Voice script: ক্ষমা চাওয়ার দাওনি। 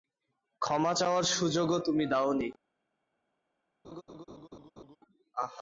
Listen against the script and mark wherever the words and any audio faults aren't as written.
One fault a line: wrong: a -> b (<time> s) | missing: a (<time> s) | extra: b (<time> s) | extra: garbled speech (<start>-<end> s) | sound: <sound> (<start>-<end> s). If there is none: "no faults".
extra: সুযোগও তুমি (1.3 s)
sound: laugh (3.8-5.0 s)